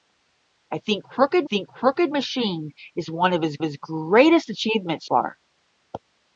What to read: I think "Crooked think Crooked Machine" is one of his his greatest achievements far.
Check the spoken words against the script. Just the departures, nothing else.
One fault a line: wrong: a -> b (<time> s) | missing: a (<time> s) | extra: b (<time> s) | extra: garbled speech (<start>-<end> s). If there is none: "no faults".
no faults